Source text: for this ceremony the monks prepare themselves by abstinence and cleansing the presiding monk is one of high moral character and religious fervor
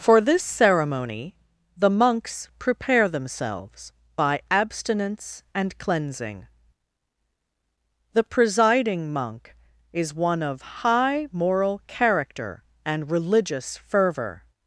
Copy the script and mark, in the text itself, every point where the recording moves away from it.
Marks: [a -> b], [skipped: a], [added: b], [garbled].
for this ceremony the monks prepare themselves by abstinence and cleansing the presiding monk is one of high moral character and religious fervor